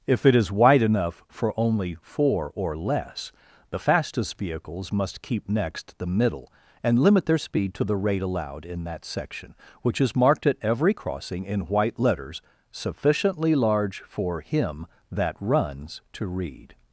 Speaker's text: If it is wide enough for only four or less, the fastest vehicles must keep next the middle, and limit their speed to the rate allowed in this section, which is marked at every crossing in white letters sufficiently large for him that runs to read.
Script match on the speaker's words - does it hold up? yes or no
no